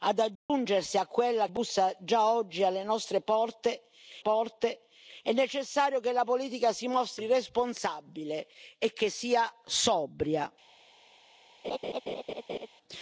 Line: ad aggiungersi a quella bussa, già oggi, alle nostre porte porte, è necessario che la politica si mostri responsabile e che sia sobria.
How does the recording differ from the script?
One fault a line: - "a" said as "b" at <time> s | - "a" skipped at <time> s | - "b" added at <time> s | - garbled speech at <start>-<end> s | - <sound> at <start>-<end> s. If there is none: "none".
- dropout at 0.4-0.5 s
- laugh at 11.6-12.7 s